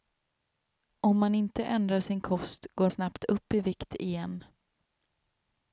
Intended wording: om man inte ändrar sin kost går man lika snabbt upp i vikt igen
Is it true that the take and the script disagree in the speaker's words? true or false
true